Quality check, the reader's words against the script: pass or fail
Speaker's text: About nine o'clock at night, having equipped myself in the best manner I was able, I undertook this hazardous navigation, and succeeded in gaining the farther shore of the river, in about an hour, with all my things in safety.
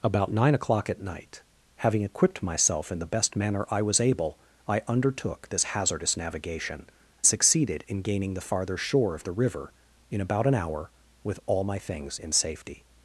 fail